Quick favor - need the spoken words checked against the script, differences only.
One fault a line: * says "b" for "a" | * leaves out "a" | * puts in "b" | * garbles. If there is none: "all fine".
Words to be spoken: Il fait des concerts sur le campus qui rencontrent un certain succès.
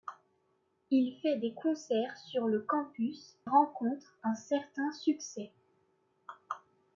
* leaves out "qui"